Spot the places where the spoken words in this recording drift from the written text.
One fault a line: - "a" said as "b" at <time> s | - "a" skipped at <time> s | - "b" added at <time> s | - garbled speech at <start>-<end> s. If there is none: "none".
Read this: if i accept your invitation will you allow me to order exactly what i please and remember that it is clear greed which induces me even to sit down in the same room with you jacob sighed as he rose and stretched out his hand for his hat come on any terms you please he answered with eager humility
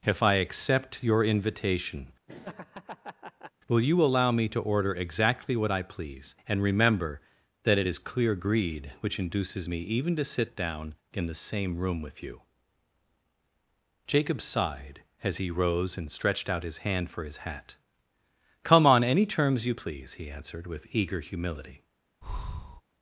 none